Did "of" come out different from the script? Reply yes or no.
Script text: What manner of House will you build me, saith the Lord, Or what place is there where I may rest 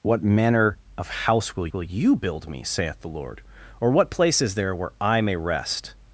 no